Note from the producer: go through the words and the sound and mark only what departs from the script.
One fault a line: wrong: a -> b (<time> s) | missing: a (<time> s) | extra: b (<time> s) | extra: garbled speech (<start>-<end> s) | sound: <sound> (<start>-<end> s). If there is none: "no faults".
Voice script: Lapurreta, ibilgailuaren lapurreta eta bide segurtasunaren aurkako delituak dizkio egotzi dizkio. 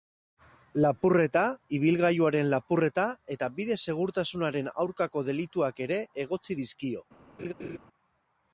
wrong: dizkio -> ere (5.9 s)
sound: laugh (7.4-7.8 s)